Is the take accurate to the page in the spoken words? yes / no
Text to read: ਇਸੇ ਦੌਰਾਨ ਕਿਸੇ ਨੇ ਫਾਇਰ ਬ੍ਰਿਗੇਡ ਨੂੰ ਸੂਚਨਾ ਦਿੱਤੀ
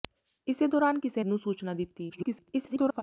no